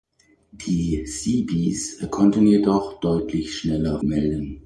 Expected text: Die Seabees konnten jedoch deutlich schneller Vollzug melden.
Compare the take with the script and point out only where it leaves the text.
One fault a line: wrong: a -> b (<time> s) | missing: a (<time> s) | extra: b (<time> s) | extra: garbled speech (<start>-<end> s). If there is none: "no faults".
missing: Vollzug (4.0 s)